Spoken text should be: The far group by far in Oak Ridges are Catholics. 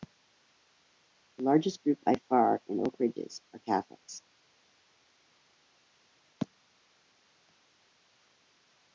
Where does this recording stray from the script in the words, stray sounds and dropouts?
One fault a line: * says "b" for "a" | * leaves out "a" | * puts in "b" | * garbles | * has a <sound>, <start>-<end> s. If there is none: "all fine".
* says "largest" for "far"